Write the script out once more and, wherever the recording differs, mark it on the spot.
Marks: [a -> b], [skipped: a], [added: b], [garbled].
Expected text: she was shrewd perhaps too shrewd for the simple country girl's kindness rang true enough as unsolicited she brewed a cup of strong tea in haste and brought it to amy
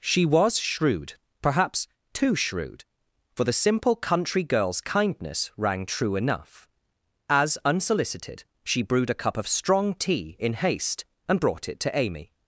she was shrewd perhaps too shrewd for the simple country girl's kindness rang true enough as unsolicited she brewed a cup of strong tea in haste and brought it to amy